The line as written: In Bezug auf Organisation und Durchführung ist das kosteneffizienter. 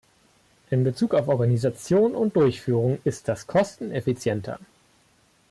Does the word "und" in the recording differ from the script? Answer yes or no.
no